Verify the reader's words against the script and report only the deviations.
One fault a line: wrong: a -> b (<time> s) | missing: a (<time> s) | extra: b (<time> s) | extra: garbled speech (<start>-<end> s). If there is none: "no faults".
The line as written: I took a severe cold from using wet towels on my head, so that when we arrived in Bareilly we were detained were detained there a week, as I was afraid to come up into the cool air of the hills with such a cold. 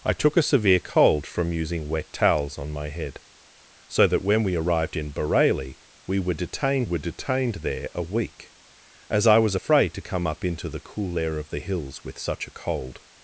no faults